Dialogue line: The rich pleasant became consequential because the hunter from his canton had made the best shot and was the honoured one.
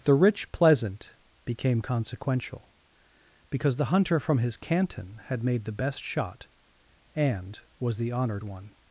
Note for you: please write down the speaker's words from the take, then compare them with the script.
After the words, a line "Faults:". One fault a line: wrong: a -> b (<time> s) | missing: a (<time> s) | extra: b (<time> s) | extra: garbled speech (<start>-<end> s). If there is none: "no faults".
The rich pleasant became consequential because the hunter from his canton had made the best shot and was the honoured one.
Faults:
no faults